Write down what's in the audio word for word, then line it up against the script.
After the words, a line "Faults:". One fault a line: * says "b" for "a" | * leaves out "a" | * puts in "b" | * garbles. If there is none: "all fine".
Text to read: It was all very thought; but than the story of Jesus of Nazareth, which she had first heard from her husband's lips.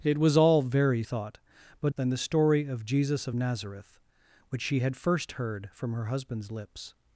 It was all very thought; but than the story of Jesus of Nazareth, which she had first heard from her husband's lips.
Faults:
all fine